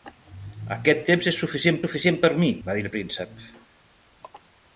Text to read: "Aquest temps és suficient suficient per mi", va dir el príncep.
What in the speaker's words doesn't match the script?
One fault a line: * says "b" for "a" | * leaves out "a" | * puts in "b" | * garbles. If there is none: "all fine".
all fine